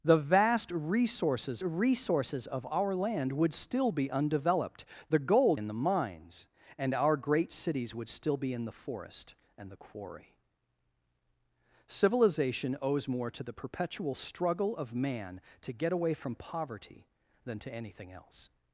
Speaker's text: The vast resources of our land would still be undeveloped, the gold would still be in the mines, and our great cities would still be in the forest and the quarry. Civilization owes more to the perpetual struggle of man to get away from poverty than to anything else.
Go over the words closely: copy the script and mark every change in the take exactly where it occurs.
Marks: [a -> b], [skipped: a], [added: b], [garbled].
The vast resources [added: resources] of our land would still be undeveloped, the gold [skipped: would still be] in the mines, and our great cities would still be in the forest and the quarry. Civilization owes more to the perpetual struggle of man to get away from poverty than to anything else.